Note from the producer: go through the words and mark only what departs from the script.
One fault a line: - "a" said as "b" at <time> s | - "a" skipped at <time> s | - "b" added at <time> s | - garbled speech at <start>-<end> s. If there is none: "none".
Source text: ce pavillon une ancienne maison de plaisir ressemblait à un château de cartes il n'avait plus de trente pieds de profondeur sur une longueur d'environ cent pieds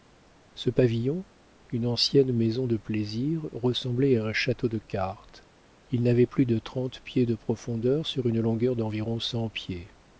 none